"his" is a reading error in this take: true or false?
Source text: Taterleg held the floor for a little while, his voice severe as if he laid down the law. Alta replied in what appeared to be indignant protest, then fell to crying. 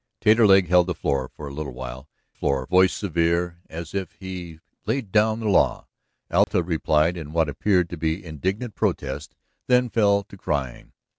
true